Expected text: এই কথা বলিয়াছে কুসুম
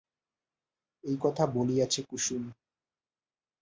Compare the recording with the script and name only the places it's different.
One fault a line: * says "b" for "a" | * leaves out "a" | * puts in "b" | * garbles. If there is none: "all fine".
all fine